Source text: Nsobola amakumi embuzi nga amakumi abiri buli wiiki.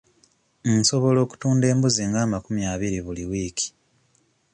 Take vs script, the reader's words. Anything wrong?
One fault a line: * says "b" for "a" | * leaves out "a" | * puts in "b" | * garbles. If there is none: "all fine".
* says "okutunda" for "amakumi"